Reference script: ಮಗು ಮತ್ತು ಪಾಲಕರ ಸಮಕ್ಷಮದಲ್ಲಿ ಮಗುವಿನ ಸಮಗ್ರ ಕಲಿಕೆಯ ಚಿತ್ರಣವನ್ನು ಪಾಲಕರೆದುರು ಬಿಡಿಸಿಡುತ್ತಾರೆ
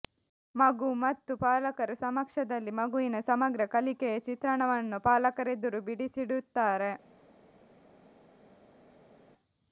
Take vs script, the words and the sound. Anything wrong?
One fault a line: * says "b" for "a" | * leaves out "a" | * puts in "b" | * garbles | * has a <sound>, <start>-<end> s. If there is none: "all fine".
all fine